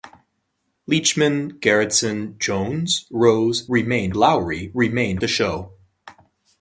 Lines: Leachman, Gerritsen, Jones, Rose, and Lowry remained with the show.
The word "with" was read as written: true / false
false